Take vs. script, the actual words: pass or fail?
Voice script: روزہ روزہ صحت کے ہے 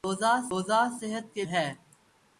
pass